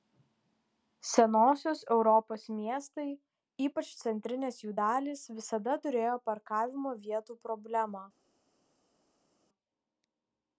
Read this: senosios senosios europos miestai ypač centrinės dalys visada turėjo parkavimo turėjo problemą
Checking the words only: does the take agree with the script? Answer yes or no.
no